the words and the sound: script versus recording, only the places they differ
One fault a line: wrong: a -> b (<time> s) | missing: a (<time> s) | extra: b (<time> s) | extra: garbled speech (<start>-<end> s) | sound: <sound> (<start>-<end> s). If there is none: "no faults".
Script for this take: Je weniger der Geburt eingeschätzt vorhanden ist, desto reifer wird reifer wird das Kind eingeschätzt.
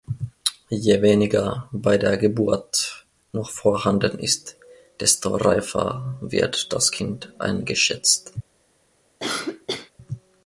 extra: bei (1.7 s)
wrong: eingeschätzt -> noch (3.3 s)
missing: reifer wird (6.7 s)
sound: cough (9.2-9.9 s)